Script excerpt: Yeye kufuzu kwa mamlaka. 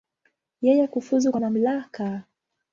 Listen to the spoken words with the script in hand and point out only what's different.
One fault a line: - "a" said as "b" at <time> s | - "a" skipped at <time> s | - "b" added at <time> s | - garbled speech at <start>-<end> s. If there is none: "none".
none